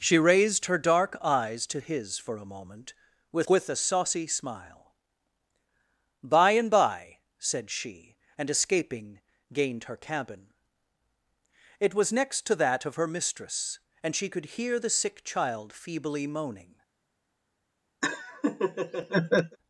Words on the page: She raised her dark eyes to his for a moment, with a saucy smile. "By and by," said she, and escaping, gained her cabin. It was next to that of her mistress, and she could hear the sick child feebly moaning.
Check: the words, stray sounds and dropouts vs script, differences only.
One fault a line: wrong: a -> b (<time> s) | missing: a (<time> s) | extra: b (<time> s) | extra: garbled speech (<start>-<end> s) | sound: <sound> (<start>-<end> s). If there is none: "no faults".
extra: with (3.5 s)
sound: laugh (18.0-19.6 s)